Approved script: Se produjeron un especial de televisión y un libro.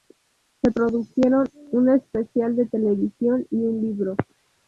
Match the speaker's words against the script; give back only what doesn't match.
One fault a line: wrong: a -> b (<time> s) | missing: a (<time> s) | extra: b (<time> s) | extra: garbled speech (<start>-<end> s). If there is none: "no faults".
no faults